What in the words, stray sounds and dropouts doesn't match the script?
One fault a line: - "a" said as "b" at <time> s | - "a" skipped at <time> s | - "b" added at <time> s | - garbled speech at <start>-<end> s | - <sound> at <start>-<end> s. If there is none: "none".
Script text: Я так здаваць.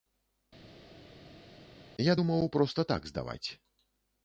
- "думаў проста" added at 2.2 s